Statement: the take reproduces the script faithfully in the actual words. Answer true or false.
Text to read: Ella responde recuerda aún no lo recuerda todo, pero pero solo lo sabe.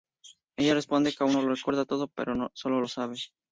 false